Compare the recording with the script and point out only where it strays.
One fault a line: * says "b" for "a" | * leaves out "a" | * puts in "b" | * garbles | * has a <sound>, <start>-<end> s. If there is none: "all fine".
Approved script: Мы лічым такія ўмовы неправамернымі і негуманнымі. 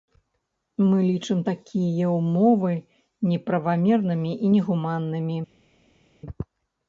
all fine